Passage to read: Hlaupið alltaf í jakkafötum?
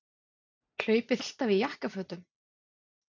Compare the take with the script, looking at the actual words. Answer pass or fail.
pass